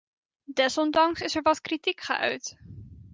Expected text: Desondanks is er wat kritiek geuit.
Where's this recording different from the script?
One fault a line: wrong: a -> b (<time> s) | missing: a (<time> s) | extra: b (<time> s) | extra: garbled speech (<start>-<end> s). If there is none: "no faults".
no faults